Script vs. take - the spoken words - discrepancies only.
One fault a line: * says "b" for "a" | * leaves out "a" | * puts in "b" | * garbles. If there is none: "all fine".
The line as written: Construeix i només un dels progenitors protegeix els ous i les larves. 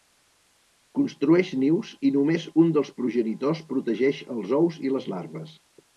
* puts in "nius"